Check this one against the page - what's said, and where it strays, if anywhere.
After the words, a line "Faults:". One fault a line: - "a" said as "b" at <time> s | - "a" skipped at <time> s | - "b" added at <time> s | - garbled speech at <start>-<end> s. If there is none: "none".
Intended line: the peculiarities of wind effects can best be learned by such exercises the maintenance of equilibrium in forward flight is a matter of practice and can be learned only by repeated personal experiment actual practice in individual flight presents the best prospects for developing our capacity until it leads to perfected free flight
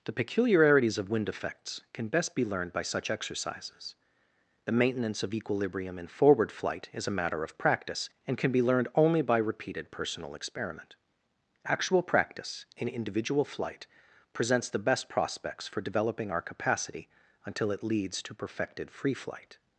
the peculiarities of wind effects can best be learned by such exercises the maintenance of equilibrium in forward flight is a matter of practice and can be learned only by repeated personal experiment actual practice in individual flight presents the best prospects for developing our capacity until it leads to perfected free flight
Faults:
none